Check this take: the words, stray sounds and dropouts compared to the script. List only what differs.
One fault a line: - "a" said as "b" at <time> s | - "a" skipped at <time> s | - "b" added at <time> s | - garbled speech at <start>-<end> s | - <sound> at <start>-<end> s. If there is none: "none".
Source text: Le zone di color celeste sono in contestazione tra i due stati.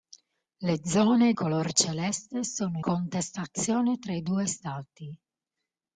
- "di" skipped at 1.3 s
- "in" skipped at 2.8 s